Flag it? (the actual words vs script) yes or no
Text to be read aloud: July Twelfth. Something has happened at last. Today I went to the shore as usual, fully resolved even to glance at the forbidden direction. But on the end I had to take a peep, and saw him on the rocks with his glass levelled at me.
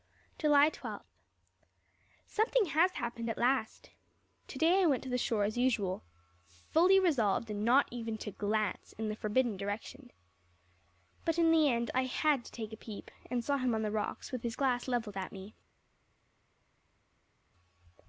yes